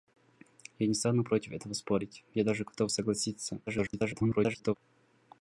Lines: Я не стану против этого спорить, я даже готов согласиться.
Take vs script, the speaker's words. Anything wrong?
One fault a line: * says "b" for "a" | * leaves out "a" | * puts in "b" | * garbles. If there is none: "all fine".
* garbles